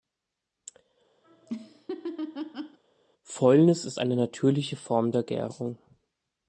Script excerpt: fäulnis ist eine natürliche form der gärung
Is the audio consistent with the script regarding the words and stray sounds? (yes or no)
no